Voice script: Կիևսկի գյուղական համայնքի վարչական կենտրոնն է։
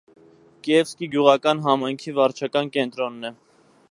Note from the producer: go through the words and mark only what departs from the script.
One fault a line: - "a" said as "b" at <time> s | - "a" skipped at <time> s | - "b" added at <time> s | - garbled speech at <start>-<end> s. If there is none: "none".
none